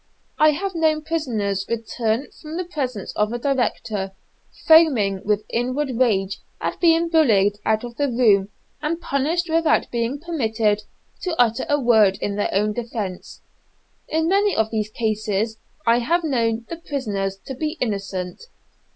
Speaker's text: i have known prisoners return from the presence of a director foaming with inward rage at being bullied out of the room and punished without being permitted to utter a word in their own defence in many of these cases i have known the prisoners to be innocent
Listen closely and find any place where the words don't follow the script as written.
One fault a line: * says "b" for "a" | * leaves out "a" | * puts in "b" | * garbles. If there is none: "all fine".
all fine